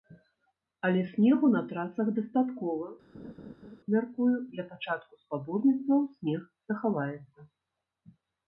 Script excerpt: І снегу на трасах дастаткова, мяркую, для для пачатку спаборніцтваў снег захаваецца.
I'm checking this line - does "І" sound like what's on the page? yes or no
no